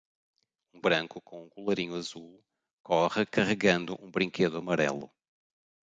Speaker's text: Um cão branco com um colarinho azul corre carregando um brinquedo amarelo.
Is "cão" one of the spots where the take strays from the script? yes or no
yes